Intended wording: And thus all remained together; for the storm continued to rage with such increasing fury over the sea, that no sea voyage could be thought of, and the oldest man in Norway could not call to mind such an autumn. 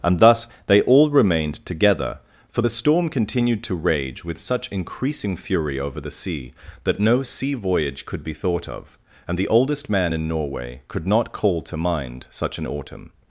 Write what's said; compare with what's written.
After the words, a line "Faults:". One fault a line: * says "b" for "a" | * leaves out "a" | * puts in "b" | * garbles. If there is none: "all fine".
And thus they all remained together; for the storm continued to rage with such increasing fury over the sea, that no sea voyage could be thought of, and the oldest man in Norway could not call to mind such an autumn.
Faults:
* puts in "they"